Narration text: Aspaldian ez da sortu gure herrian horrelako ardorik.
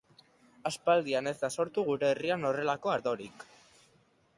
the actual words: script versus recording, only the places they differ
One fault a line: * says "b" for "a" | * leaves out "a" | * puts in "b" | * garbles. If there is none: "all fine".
all fine